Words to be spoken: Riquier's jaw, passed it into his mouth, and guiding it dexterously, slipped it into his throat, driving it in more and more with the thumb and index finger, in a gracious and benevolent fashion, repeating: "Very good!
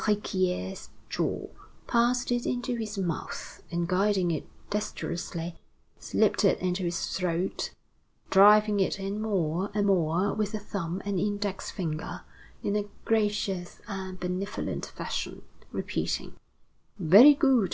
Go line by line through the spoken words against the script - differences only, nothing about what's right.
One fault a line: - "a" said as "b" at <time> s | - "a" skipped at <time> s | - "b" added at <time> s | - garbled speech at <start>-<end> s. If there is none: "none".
none